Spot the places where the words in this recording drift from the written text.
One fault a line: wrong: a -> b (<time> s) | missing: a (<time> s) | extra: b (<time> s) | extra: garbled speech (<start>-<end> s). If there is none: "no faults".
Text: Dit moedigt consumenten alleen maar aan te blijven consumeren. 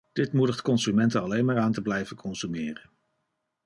no faults